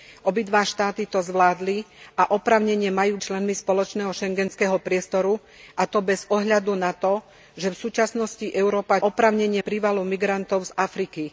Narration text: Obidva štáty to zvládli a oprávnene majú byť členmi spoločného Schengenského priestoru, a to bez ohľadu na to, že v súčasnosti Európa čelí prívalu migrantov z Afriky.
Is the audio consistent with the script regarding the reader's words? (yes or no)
no